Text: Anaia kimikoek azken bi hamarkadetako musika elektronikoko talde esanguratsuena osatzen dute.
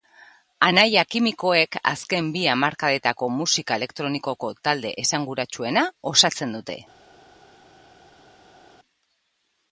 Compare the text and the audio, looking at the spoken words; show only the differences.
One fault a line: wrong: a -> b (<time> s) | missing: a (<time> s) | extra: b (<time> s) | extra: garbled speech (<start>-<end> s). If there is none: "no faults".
no faults